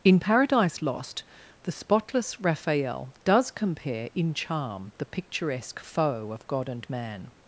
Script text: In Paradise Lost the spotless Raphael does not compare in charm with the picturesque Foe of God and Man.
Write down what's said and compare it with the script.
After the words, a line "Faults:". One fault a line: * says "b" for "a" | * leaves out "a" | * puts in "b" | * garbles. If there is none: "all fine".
In Paradise Lost the spotless Raphael does compare in charm the picturesque Foe of God and Man.
Faults:
* leaves out "not"
* leaves out "with"